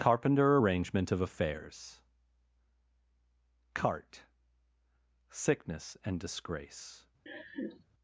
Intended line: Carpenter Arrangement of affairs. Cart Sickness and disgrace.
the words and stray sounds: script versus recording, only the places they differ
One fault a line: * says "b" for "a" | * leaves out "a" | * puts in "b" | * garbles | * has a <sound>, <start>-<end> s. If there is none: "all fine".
* has a laugh, 7.3-7.8 s